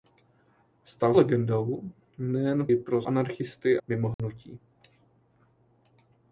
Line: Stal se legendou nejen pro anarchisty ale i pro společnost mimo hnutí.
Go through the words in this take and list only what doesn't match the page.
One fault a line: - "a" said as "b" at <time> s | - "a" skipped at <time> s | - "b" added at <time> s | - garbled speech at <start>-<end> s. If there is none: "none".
- "se" skipped at 1.1 s
- "pro anarchisty ale" skipped at 2.7 s
- "společnost" said as "anarchisty" at 3.1 s